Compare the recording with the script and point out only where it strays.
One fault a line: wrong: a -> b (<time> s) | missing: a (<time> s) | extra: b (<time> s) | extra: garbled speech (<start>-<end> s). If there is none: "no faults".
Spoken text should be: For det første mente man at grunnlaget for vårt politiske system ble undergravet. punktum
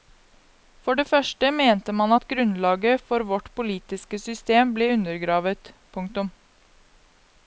no faults